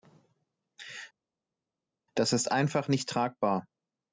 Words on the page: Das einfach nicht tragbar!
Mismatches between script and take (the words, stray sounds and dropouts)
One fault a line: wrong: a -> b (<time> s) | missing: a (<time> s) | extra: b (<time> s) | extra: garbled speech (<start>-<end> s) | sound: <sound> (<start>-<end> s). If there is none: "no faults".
extra: ist (2.3 s)